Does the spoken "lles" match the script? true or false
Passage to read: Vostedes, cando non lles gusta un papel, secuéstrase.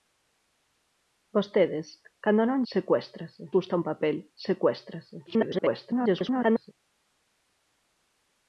false